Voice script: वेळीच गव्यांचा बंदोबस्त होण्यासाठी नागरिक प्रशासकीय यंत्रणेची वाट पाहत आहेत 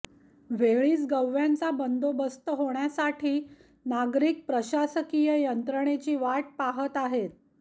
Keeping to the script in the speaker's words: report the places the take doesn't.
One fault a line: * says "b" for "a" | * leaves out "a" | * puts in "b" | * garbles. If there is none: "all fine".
all fine